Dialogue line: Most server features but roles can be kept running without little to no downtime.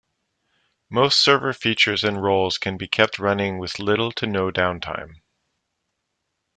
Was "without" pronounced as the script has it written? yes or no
no